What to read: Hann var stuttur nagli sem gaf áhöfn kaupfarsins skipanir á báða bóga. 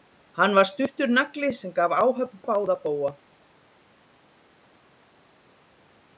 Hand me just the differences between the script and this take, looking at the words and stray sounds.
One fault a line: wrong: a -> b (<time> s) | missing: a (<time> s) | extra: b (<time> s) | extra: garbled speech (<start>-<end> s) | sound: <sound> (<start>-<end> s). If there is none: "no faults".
missing: kaupfarsins skipanir (2.4 s)